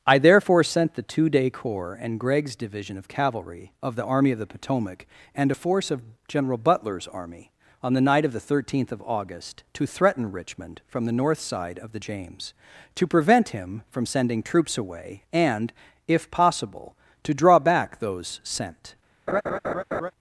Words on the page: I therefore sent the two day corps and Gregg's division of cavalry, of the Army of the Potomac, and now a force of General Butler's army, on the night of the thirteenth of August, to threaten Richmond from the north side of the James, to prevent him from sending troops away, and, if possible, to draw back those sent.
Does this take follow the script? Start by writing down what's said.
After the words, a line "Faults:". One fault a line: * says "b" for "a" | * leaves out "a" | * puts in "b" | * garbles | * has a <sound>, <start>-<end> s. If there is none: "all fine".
I therefore sent the two day corps and Gregg's division of cavalry, of the Army of the Potomac, and a force of General Butler's army, on the night of the thirteenth of August, to threaten Richmond from the north side of the James, to prevent him from sending troops away, and, if possible, to draw back those sent.
Faults:
* leaves out "now"
* has a laugh, 19.3-20.1 s